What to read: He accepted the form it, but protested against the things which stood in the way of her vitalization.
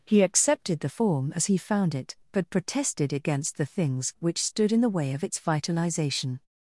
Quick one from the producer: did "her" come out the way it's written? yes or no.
no